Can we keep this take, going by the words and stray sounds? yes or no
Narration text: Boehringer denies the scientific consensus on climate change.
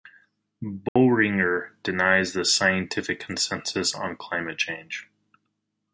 no